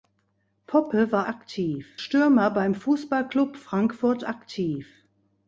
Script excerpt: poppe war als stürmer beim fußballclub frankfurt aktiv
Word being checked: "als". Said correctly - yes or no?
no